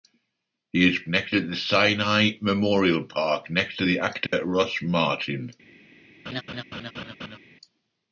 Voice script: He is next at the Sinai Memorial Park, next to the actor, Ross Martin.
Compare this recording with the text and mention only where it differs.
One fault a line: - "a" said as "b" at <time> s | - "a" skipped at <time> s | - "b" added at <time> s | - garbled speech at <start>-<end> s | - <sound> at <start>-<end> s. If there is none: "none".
- dropout at 4.3-4.3 s
- laugh at 6.3-7.4 s